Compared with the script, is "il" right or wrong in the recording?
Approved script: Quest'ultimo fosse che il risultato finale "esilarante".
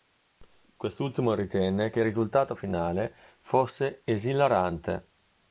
right